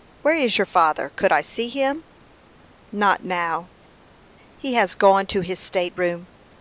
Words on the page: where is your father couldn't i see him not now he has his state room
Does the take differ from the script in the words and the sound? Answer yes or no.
yes